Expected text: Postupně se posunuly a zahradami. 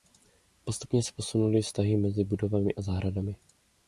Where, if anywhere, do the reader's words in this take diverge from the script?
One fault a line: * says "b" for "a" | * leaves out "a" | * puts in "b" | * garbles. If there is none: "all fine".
* puts in "vztahy mezi budovami"